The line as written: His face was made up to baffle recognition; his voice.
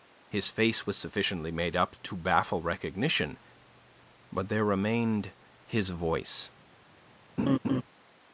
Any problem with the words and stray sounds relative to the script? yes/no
yes